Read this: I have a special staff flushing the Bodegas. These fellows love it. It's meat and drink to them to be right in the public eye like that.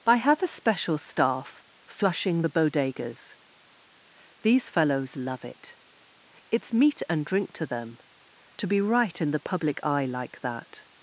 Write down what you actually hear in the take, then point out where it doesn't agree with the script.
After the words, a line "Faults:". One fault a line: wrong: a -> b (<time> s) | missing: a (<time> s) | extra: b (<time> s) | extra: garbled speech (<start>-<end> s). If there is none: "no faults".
I have a special staff flushing the Bodegas. These fellows love it. It's meat and drink to them to be right in the public eye like that.
Faults:
no faults